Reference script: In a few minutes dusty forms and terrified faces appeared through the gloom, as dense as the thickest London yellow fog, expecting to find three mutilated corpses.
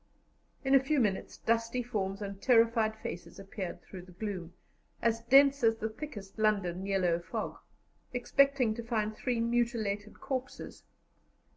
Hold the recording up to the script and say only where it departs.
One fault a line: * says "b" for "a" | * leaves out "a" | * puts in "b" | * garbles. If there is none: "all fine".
all fine